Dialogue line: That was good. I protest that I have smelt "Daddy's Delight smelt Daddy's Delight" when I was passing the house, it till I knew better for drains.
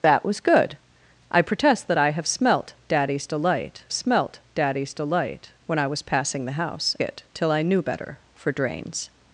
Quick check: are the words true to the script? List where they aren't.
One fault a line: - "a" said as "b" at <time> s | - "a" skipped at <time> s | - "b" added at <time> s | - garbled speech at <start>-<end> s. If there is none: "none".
none